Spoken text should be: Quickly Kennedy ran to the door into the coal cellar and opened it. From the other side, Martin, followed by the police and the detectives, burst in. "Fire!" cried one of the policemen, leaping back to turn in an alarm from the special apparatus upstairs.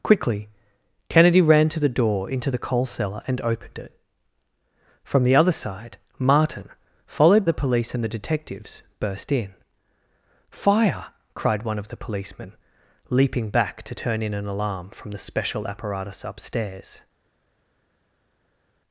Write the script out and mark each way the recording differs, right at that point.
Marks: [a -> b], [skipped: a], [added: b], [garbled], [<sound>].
Quickly Kennedy ran to the door into the coal cellar and opened it. From the other side, Martin, followed [skipped: by] the police and the detectives, burst in. "Fire!" cried one of the policemen, leaping back to turn in an alarm from the special apparatus upstairs.